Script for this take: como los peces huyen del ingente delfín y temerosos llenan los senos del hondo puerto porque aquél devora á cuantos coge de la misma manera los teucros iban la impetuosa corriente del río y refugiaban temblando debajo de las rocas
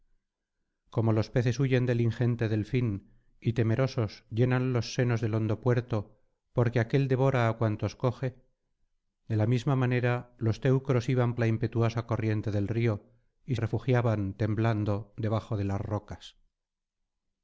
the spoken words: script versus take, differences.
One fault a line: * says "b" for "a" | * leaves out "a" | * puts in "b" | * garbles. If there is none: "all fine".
all fine